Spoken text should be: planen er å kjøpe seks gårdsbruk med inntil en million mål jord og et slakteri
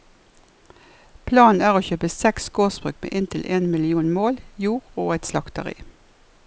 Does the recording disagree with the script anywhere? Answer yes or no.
no